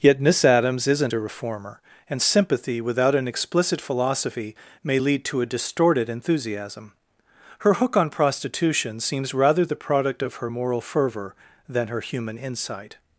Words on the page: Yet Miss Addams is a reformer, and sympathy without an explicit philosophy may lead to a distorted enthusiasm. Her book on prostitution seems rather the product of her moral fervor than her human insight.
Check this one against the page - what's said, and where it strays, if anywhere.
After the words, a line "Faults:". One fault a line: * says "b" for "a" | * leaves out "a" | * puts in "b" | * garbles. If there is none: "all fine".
Yet Miss Addams isn't a reformer, and sympathy without an explicit philosophy may lead to a distorted enthusiasm. Her hook on prostitution seems rather the product of her moral fervor than her human insight.
Faults:
* says "isn't" for "is"
* says "hook" for "book"